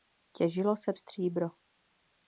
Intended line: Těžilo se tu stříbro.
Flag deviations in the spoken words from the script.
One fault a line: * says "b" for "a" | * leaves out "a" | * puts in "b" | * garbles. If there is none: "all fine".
* leaves out "tu"